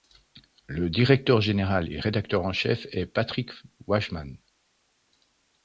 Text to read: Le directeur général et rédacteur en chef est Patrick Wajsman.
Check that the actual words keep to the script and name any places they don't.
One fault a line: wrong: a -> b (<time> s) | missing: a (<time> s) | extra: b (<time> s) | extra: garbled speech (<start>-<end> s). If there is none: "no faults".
no faults